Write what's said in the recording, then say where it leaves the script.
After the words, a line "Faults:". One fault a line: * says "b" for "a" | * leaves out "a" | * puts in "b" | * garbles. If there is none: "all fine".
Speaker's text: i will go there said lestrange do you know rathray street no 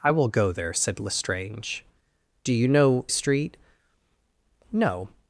i will go there said lestrange do you know street no
Faults:
* leaves out "rathray"